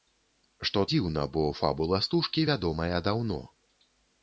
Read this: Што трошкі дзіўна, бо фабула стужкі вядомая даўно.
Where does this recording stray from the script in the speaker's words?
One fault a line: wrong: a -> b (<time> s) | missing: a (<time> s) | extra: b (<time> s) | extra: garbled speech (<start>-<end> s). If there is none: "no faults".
missing: трошкі (0.8 s)